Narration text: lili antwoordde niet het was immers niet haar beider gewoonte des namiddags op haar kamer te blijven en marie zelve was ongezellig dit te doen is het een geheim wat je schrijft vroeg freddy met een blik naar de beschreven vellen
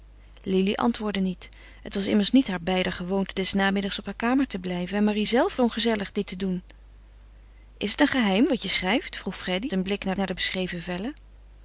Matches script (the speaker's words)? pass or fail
fail